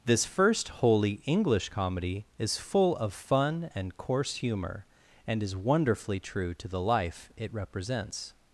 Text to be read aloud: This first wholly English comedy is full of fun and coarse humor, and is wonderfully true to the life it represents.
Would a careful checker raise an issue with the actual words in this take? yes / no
no